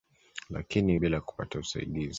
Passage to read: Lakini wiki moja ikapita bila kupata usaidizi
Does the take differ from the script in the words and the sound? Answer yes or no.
yes